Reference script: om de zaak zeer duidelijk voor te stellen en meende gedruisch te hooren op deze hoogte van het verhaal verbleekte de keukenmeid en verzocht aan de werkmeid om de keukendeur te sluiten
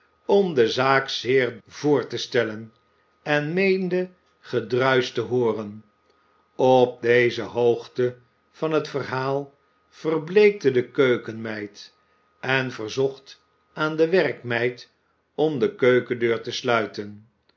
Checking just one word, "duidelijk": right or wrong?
wrong